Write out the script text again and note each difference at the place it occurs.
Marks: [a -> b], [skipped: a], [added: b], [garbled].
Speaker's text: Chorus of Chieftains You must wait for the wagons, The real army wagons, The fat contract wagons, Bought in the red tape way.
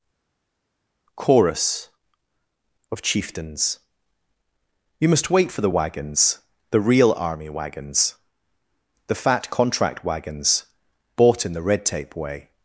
Chorus of Chieftains You must wait for the wagons, The real army wagons, The fat contract wagons, Bought in the red tape way.